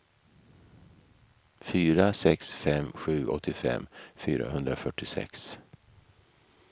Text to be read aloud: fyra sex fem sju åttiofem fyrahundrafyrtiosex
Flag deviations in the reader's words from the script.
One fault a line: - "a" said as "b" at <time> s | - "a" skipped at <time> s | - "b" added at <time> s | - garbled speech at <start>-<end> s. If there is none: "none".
none